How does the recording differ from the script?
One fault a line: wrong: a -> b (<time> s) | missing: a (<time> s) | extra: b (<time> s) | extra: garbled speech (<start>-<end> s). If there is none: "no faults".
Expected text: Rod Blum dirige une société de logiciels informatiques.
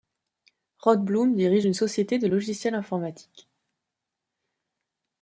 no faults